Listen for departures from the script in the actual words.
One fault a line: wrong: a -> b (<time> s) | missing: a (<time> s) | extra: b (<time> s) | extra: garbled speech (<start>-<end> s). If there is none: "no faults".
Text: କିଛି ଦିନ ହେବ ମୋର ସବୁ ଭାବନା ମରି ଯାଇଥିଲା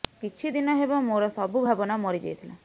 no faults